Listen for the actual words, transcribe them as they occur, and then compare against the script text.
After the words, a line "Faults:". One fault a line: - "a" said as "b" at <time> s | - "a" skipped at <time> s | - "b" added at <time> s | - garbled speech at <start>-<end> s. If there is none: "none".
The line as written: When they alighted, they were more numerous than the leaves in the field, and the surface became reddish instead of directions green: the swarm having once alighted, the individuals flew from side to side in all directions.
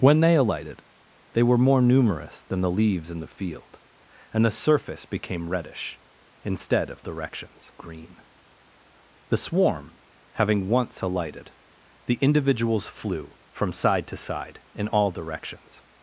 When they alighted, they were more numerous than the leaves in the field, and the surface became reddish instead of directions green: the swarm having once alighted, the individuals flew from side to side in all directions.
Faults:
none